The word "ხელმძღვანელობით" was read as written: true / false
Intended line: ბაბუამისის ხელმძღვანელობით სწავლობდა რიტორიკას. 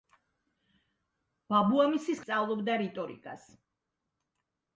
false